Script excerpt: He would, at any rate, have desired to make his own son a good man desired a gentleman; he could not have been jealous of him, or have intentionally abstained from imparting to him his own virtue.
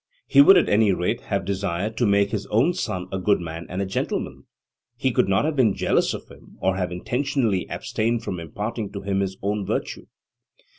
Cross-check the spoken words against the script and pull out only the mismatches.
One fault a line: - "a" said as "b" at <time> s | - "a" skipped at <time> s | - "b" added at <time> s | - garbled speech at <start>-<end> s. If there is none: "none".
- "desired" said as "and" at 3.7 s